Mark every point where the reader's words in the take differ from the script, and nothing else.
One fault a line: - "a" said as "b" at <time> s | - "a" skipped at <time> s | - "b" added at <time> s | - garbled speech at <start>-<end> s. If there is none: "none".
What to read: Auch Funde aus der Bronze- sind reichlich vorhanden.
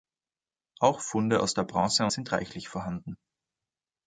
none